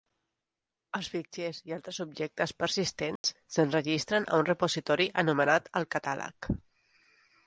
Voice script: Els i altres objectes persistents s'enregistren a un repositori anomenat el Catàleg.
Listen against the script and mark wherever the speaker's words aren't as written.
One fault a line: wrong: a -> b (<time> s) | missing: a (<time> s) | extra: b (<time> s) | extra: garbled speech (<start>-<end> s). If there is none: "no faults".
extra: fitxers (1.1 s)